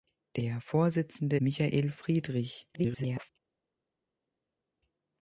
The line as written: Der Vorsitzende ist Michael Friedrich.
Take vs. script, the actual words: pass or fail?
fail